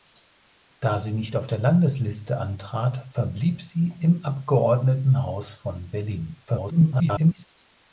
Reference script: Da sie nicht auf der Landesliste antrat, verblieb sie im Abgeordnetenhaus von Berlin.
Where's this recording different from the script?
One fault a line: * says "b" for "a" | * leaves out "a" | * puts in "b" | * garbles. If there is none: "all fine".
* garbles